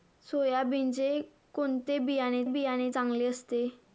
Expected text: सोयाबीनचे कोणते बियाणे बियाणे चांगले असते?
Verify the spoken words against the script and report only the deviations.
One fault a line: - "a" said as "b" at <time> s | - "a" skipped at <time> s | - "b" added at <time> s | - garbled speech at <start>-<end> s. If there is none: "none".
none